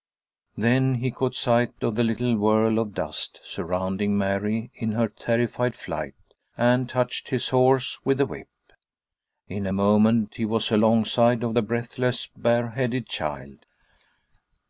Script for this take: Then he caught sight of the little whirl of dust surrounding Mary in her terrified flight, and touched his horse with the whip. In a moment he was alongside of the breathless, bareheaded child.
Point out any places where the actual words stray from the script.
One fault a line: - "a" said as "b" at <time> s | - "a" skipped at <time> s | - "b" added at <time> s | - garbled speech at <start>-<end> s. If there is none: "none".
none